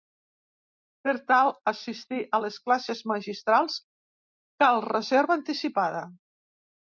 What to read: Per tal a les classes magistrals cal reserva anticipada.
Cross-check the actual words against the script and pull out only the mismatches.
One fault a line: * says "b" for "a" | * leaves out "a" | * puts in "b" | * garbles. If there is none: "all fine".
* puts in "assistir"